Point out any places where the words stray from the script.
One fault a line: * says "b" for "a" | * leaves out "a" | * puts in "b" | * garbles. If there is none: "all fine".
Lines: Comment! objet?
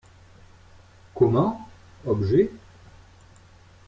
all fine